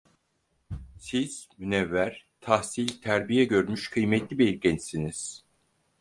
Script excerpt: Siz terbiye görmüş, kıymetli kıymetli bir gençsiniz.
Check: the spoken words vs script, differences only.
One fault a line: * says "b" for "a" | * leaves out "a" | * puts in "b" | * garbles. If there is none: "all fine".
* puts in "münevver tahsil"
* leaves out "kıymetli"